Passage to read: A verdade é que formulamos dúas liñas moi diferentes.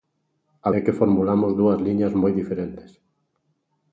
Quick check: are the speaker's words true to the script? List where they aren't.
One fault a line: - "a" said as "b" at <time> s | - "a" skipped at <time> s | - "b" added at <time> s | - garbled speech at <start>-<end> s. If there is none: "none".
- "verdade" skipped at 0.7 s